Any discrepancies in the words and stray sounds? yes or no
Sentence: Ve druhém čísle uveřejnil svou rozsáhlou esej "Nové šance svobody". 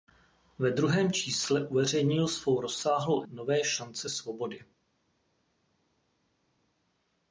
yes